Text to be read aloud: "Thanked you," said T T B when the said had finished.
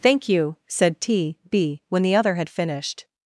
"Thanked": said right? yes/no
no